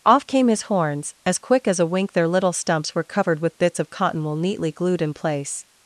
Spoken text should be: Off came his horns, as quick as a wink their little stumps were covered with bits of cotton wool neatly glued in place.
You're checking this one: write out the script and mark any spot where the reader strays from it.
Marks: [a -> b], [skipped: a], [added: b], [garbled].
Off came his horns, as quick as a wink their little stumps were covered with bits of cotton wool neatly glued in place.